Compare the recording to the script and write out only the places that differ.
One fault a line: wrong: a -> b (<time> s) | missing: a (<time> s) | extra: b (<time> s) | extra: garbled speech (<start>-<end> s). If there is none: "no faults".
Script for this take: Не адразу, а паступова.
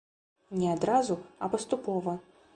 no faults